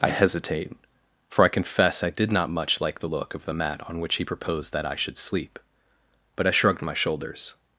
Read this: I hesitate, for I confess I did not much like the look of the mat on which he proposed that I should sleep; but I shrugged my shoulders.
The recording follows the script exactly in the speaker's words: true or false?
true